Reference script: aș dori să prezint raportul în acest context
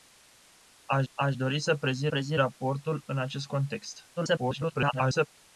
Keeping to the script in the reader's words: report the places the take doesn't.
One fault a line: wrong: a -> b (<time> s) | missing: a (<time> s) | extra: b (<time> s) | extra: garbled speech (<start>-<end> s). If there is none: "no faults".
extra: aș (1.1 s)
extra: prezint (2.1 s)
extra: garbled speech (4.2-5.3 s)